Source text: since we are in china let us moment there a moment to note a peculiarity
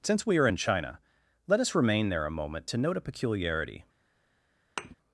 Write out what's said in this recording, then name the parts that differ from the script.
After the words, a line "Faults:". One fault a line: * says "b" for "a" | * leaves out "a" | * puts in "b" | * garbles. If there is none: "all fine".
since we are in china let us remain there a moment to note a peculiarity
Faults:
* says "remain" for "moment"